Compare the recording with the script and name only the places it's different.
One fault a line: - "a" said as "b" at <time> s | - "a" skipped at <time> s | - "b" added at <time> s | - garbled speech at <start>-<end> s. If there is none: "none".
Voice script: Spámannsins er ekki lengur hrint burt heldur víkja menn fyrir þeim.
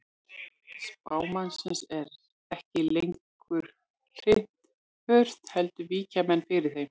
none